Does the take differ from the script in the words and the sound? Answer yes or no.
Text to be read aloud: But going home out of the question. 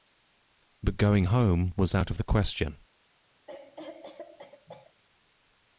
yes